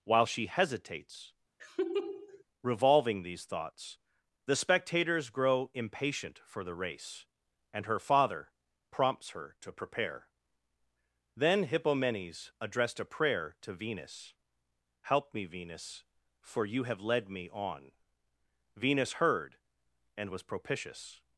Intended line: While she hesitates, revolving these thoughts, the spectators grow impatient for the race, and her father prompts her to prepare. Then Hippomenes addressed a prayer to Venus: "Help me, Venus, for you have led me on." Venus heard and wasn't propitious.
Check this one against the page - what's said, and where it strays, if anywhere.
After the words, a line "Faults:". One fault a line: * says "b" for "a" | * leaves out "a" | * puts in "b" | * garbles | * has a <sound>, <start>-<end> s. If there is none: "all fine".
While she hesitates, revolving these thoughts, the spectators grow impatient for the race, and her father prompts her to prepare. Then Hippomenes addressed a prayer to Venus: "Help me, Venus, for you have led me on." Venus heard and was propitious.
Faults:
* has a laugh, 1.6-2.4 s
* says "was" for "wasn't"